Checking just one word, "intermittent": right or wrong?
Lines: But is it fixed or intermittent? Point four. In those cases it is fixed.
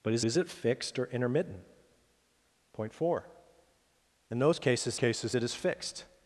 right